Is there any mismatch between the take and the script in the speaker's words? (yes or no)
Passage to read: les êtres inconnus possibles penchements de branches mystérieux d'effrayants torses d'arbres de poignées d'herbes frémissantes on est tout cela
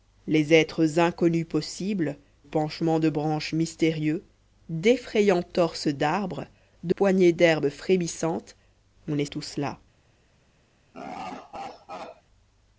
no